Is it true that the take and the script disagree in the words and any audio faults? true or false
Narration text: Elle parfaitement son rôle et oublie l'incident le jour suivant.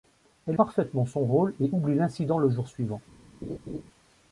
true